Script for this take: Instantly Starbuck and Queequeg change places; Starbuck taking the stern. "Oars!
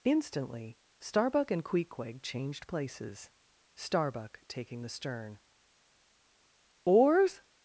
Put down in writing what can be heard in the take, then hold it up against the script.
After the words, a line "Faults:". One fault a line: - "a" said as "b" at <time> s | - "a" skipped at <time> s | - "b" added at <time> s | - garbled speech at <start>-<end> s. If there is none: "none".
Instantly Starbuck and Queequeg changed places; Starbuck taking the stern. "Oars!
Faults:
- "change" said as "changed" at 2.2 s